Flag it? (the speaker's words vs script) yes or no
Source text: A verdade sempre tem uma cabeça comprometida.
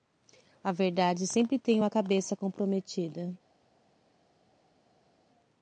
no